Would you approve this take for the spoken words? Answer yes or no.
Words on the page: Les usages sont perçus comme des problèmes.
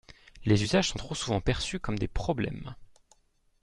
no